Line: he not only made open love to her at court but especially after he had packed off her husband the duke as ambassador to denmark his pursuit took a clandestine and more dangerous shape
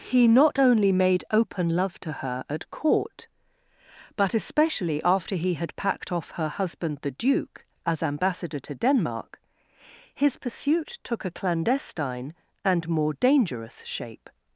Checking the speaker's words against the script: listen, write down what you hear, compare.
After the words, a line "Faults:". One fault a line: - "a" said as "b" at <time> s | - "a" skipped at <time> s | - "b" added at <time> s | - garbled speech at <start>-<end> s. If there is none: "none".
he not only made open love to her at court but especially after he had packed off her husband the duke as ambassador to denmark his pursuit took a clandestine and more dangerous shape
Faults:
none